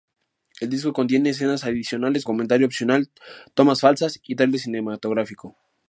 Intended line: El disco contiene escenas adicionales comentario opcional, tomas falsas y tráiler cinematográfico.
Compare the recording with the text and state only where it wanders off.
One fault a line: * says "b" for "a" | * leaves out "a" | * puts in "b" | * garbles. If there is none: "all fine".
all fine